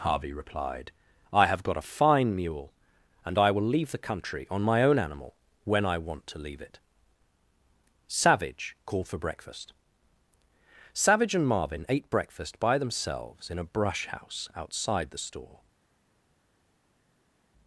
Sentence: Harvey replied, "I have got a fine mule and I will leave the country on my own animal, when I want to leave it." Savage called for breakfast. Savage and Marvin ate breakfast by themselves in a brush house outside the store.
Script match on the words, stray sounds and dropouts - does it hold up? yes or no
yes